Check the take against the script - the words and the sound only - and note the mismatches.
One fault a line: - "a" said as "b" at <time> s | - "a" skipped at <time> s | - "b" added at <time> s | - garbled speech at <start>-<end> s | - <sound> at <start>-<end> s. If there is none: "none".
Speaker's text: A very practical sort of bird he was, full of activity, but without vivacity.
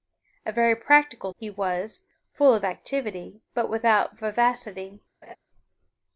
- "sort of bird" skipped at 1.3 s
- laugh at 5.2-5.4 s